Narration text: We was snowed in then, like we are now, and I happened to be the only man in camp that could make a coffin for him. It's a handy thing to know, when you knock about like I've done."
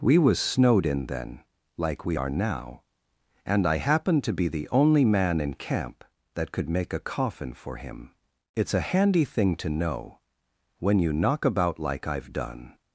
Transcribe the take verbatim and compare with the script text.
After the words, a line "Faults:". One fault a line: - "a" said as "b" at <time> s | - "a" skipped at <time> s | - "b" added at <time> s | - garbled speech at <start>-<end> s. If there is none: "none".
We was snowed in then, like we are now, and I happened to be the only man in camp that could make a coffin for him. It's a handy thing to know, when you knock about like I've done."
Faults:
none